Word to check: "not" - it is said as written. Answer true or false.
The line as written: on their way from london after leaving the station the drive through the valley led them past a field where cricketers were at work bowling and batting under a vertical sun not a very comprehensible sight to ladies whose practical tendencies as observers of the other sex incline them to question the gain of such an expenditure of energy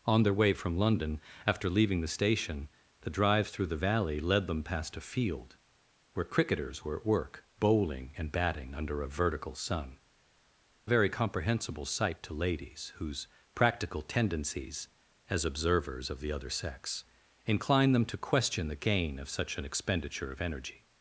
false